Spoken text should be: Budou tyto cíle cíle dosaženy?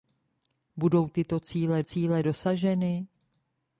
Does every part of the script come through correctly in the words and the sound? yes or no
yes